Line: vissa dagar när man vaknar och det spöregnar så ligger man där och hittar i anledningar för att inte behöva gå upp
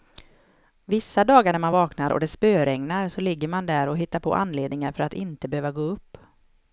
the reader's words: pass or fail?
fail